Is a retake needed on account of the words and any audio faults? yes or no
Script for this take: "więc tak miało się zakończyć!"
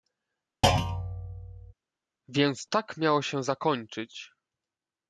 yes